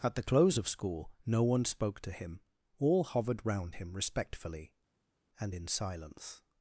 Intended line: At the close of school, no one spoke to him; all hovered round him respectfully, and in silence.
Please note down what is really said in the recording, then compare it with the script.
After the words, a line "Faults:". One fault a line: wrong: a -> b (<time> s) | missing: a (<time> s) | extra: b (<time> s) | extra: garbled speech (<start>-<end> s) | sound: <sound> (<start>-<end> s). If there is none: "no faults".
At the close of school, no one spoke to him; all hovered round him respectfully, and in silence.
Faults:
no faults